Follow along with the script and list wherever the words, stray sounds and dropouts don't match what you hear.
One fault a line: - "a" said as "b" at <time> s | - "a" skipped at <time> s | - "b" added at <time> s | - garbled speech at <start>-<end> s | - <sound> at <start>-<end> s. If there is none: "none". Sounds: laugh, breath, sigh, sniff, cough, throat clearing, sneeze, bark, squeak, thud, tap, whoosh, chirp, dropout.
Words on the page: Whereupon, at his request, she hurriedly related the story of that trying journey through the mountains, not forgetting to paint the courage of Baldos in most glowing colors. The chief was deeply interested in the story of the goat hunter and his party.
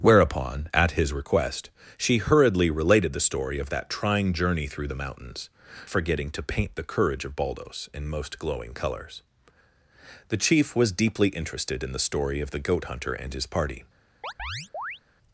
- "not" skipped at 5.5 s
- chirp at 14.2-15.0 s